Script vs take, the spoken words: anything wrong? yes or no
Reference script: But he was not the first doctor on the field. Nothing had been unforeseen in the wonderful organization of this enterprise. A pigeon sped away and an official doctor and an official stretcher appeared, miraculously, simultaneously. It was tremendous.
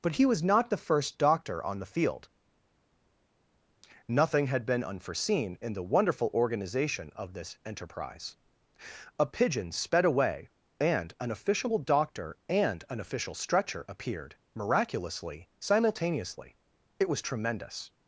no